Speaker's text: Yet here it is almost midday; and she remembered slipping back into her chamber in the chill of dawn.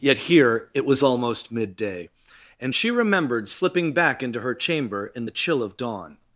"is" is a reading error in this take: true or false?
true